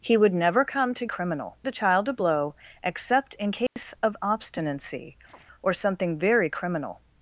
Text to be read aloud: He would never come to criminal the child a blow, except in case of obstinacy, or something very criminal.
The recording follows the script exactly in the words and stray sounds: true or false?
false